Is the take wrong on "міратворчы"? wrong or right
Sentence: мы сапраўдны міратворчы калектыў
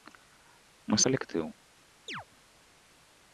wrong